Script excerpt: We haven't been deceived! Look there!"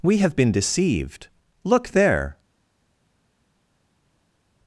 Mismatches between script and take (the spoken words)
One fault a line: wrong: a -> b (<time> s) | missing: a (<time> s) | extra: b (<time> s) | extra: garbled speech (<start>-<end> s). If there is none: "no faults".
wrong: haven't -> have (0.2 s)